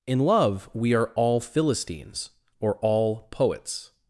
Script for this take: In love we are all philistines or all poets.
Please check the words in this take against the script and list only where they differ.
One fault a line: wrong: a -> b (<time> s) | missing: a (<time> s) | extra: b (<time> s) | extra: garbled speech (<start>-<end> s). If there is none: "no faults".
no faults